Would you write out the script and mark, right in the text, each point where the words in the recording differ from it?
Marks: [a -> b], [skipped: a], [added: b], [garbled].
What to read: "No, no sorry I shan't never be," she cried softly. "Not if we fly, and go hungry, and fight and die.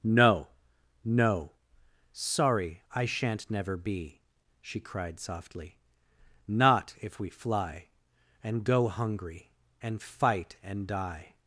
"No, no sorry I shan't never be," she cried softly. "Not if we fly, and go hungry, and fight and die.